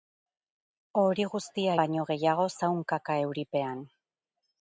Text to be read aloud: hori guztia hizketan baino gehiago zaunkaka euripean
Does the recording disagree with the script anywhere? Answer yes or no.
yes